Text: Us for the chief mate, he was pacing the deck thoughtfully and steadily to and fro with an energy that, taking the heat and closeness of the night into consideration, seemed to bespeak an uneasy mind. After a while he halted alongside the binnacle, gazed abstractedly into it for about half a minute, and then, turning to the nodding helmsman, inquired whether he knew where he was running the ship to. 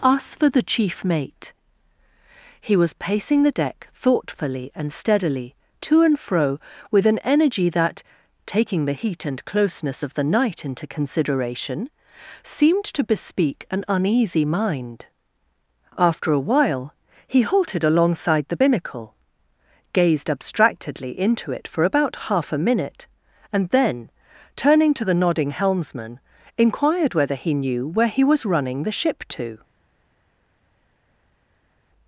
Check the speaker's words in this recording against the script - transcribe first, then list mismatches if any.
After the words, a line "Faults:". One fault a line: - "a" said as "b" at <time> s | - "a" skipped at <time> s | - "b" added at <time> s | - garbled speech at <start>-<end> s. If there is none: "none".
Us for the chief mate, he was pacing the deck thoughtfully and steadily to and fro with an energy that, taking the heat and closeness of the night into consideration, seemed to bespeak an uneasy mind. After a while he halted alongside the binnacle, gazed abstractedly into it for about half a minute, and then, turning to the nodding helmsman, inquired whether he knew where he was running the ship to.
Faults:
none